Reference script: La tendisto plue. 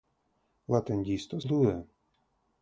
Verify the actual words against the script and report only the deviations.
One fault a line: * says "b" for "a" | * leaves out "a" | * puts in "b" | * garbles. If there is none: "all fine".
all fine